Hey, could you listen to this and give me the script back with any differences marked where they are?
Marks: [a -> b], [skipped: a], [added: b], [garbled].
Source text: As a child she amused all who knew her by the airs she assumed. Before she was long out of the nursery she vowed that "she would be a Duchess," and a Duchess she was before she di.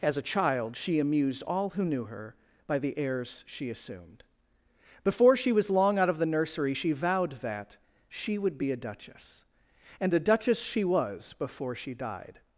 As a child she amused all who knew her by the airs she assumed. Before she was long out of the nursery she vowed that "she would be a Duchess," and a Duchess she was before she [di. -> died]